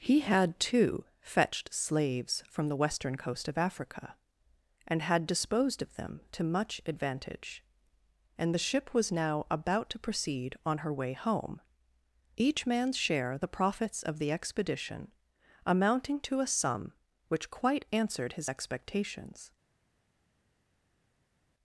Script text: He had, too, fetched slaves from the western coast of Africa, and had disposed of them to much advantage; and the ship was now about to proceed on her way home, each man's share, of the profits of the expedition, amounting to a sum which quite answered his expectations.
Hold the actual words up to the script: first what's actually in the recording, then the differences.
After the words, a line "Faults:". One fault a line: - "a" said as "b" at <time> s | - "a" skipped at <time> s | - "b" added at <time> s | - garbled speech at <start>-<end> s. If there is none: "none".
He had, too, fetched slaves from the western coast of Africa, and had disposed of them to much advantage; and the ship was now about to proceed on her way home, each man's share, the profits of the expedition, amounting to a sum which quite answered his expectations.
Faults:
- "of" skipped at 13.4 s